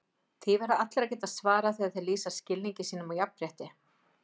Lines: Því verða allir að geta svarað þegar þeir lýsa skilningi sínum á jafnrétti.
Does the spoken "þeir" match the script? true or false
true